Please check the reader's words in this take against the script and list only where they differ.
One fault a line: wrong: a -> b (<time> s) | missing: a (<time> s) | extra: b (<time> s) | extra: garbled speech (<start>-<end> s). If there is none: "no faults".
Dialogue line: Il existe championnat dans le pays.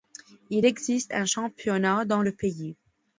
extra: un (1.1 s)